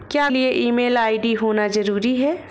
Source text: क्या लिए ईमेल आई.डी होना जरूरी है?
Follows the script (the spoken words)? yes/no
yes